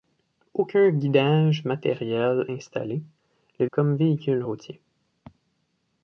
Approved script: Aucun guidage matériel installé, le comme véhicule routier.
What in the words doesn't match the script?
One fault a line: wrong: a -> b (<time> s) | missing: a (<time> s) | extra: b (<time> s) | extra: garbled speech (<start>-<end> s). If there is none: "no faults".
no faults